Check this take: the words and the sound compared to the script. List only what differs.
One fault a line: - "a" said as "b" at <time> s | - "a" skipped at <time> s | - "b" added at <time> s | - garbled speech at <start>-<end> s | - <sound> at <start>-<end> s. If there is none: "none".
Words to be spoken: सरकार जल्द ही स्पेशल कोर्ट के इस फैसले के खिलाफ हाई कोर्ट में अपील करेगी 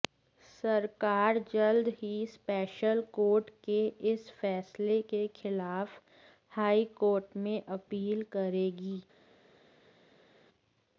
none